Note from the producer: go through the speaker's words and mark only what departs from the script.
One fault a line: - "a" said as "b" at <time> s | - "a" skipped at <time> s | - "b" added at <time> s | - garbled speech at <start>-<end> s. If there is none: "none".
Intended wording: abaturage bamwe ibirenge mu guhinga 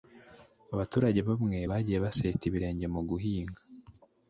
- "bagiye baseta" added at 1.7 s